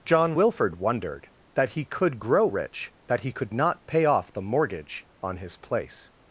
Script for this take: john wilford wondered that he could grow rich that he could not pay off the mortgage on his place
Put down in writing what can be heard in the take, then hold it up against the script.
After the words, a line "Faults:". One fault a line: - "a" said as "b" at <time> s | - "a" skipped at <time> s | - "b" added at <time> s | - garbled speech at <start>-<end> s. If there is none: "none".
john wilford wondered that he could grow rich that he could not pay off the mortgage on his place
Faults:
none